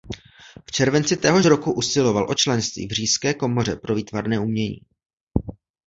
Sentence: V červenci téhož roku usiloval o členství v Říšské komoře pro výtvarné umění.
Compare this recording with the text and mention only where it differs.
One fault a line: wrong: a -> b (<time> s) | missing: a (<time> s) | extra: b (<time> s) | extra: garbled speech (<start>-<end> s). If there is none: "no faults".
no faults